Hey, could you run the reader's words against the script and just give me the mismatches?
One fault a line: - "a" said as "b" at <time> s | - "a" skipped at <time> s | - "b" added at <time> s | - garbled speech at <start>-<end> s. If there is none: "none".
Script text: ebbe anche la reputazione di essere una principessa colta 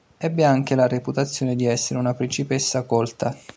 none